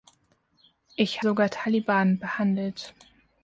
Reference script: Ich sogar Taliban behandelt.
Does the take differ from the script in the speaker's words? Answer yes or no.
no